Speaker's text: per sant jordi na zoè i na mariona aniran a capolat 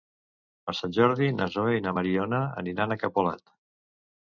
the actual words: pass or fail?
pass